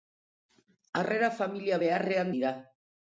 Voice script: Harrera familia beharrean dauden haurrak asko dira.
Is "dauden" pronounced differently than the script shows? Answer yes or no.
yes